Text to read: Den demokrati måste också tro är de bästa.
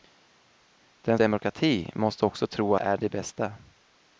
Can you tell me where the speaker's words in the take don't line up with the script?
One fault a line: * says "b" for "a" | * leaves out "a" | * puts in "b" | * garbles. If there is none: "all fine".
all fine